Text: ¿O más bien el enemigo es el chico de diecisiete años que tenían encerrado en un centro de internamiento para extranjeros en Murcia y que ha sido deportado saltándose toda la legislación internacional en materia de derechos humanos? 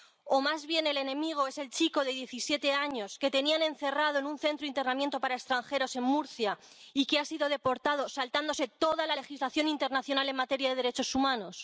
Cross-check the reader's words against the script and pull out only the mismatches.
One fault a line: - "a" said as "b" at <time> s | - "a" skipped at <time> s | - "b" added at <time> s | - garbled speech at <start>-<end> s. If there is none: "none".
none